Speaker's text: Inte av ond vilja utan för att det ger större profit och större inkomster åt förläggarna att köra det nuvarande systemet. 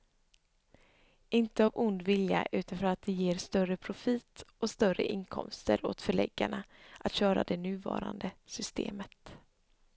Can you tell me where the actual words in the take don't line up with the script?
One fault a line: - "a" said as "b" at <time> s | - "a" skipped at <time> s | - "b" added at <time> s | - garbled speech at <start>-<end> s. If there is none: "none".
none